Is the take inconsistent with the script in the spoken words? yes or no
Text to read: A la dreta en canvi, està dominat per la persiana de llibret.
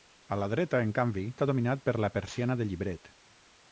no